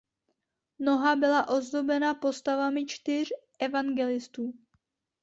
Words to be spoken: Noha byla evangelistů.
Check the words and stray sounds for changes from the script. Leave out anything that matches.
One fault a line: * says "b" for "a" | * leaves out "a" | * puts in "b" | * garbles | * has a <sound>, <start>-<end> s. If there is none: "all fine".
* puts in "ozdobena postavami čtyř"